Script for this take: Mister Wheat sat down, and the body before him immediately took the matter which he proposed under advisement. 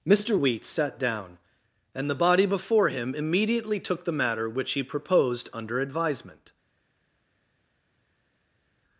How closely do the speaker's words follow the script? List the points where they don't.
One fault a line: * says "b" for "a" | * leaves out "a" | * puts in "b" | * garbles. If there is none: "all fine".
all fine